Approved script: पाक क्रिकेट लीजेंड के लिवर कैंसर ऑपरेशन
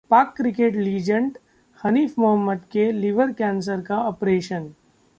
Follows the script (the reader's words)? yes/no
no